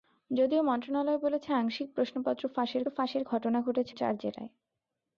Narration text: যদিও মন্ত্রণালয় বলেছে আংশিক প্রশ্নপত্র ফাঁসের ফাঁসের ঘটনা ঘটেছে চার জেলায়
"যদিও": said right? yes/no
yes